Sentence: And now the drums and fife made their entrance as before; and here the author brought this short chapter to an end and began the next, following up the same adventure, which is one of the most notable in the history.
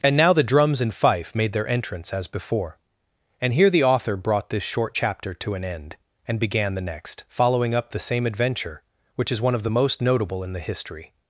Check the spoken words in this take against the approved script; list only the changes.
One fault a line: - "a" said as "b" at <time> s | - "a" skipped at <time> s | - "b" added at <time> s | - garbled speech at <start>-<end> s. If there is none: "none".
none